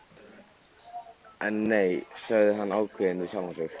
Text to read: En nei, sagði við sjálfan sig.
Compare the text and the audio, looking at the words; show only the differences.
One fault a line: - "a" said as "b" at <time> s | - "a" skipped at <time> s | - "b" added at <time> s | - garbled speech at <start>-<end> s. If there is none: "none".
- "hann ákveðinn" added at 2.6 s